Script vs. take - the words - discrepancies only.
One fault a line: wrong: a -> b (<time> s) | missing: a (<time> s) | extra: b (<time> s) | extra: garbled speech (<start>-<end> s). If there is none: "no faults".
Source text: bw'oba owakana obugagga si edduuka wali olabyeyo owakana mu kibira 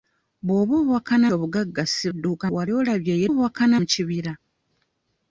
no faults